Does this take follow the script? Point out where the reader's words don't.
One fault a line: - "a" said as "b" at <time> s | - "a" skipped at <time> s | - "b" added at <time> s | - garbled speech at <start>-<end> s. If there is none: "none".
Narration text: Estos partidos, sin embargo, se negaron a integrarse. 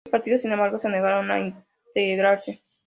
none